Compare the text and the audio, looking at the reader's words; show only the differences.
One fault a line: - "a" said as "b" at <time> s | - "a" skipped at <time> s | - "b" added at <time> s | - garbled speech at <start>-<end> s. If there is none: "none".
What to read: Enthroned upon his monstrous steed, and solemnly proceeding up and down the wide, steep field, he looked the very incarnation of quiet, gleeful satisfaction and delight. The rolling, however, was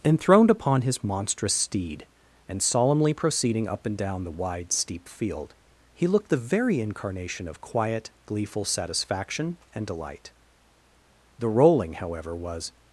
none